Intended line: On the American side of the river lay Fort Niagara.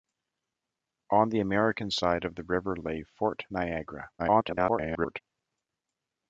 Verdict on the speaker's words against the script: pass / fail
fail